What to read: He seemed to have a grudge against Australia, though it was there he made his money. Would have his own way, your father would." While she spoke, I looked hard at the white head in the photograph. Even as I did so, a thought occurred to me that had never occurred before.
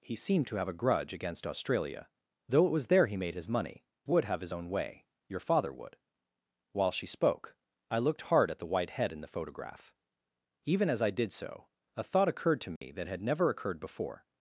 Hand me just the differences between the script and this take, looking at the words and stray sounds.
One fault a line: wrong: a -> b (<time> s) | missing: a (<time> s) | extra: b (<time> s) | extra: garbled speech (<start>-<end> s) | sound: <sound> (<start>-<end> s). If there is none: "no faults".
sound: dropout (12.8-12.8 s)